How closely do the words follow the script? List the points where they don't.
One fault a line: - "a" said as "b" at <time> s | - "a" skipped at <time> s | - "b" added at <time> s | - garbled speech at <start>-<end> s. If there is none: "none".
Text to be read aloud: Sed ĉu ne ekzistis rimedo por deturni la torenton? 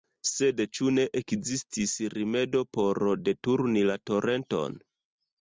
none